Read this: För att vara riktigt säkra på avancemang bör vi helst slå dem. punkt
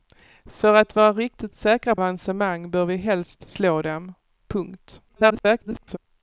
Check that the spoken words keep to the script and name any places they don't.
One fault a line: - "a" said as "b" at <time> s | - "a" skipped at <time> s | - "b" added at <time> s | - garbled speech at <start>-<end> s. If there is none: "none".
- "på" skipped at 1.9 s
- garbled speech at 5.1-6.0 s